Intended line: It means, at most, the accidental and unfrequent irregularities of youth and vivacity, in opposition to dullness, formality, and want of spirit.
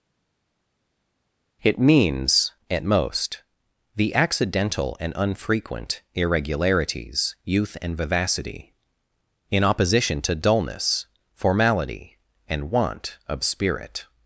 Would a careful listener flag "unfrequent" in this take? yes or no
no